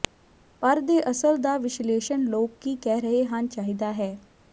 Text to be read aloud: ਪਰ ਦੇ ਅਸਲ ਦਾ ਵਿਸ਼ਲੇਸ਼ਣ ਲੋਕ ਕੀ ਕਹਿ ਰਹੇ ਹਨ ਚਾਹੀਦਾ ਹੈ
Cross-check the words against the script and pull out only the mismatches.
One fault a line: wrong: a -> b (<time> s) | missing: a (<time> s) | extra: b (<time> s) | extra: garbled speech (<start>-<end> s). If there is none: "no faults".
no faults